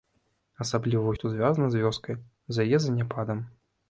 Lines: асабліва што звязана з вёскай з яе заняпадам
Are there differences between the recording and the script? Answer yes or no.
no